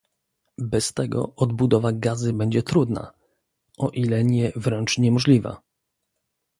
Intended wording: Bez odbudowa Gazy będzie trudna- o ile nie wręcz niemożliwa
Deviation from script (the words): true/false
true